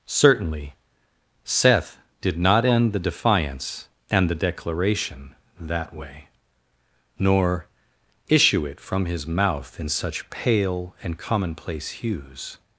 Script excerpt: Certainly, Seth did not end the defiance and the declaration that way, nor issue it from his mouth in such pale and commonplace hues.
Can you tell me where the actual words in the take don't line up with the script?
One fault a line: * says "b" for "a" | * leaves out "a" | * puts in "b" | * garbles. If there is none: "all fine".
all fine